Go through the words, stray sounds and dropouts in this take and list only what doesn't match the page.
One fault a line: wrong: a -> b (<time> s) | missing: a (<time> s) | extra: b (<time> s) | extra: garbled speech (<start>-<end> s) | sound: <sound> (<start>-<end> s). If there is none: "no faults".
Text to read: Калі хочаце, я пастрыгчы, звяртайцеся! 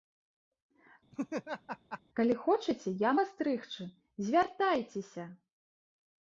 sound: laugh (1.1-2.0 s)